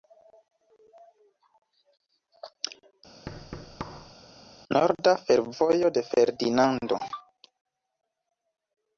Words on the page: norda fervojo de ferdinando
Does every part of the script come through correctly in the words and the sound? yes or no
no